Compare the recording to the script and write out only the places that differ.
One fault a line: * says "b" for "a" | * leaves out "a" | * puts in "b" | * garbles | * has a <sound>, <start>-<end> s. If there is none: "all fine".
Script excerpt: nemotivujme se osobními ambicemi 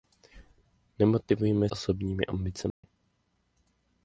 * leaves out "se"
* has a dropout, 2.7-2.8 s